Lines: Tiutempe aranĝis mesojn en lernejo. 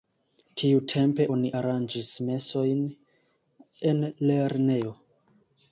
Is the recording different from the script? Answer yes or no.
yes